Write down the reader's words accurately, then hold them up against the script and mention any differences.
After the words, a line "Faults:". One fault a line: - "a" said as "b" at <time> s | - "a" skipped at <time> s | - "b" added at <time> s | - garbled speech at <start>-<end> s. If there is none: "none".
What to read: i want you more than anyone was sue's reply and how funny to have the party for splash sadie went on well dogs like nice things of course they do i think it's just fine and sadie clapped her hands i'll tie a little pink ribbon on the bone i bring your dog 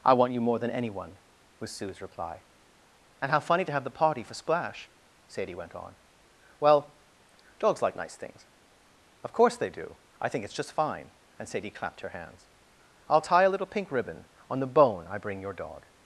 i want you more than anyone was sue's reply and how funny to have the party for splash sadie went on well dogs like nice things of course they do i think it's just fine and sadie clapped her hands i'll tie a little pink ribbon on the bone i bring your dog
Faults:
none